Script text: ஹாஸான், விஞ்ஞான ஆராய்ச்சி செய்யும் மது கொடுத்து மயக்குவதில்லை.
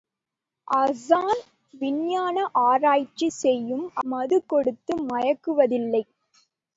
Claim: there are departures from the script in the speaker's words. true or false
false